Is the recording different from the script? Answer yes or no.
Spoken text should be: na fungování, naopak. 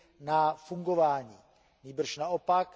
yes